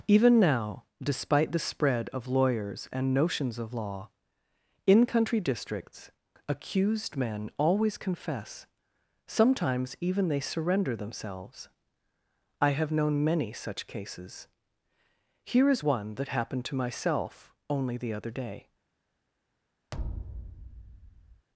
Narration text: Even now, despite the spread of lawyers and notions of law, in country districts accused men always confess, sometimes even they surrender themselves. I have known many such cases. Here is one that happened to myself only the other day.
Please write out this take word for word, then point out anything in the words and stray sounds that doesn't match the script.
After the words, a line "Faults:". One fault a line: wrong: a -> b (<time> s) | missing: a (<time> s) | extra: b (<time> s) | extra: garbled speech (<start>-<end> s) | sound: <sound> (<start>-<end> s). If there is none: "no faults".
Even now, despite the spread of lawyers and notions of law, in country districts accused men always confess, sometimes even they surrender themselves. I have known many such cases. Here is one that happened to myself only the other day.
Faults:
sound: thud (19.9-21.5 s)